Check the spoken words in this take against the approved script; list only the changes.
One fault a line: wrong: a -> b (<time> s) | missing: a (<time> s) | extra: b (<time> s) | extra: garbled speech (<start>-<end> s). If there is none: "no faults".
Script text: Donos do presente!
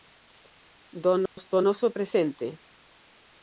extra: noso (1.6 s)